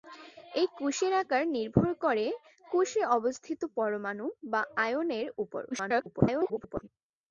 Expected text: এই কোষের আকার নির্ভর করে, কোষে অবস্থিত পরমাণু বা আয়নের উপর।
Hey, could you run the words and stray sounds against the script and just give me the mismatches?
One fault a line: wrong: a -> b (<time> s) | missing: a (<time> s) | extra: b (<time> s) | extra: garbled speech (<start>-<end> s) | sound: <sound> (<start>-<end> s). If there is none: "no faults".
extra: garbled speech (5.7-6.9 s)